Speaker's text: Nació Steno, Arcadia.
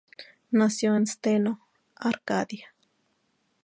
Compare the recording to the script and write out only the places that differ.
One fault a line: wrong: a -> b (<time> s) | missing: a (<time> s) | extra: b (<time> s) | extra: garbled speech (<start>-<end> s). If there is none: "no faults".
extra: en (0.9 s)